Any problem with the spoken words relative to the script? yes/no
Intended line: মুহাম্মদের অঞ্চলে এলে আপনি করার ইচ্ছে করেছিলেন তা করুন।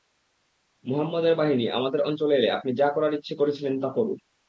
yes